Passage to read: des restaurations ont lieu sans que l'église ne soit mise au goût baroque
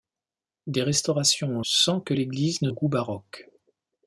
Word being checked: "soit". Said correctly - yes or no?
no